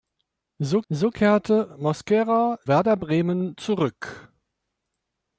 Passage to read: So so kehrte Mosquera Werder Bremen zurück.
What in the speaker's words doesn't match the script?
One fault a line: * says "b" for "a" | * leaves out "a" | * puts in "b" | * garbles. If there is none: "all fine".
all fine